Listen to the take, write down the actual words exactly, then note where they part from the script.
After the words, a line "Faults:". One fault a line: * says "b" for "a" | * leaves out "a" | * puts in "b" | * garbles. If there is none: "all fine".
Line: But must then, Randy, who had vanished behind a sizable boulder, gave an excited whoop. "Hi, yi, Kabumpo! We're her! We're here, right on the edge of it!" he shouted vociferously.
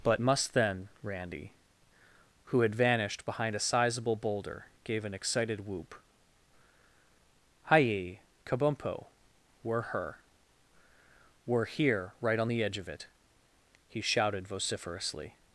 But must then, Randy, who had vanished behind a sizable boulder, gave an excited whoop. "Hi, yi, Kabumpo! We're her! We're here, right on the edge of it!" he shouted vociferously.
Faults:
all fine